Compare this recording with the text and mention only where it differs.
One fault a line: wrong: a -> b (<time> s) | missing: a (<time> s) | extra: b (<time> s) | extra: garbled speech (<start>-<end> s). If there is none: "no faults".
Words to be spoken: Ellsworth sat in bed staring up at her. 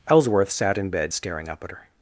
no faults